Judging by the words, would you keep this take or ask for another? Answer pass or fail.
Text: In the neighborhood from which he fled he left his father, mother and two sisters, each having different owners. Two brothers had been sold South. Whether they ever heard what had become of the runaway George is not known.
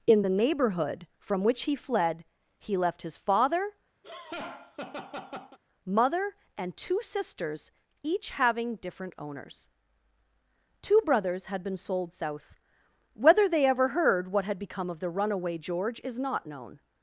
pass